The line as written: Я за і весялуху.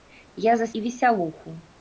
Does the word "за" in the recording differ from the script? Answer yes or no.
no